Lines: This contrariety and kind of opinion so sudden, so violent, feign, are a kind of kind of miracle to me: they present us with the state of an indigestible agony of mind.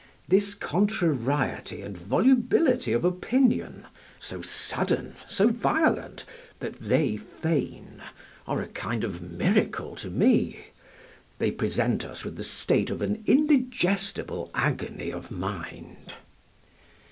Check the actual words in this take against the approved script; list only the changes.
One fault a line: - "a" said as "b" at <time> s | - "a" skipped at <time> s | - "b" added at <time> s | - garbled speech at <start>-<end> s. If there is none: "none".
- "kind" said as "volubility" at 1.9 s
- "that they" added at 6.6 s
- "kind of" skipped at 9.2 s